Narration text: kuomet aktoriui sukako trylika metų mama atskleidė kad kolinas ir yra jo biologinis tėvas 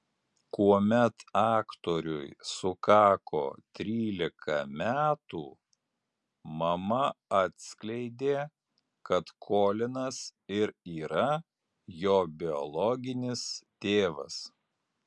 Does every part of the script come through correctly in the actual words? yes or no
yes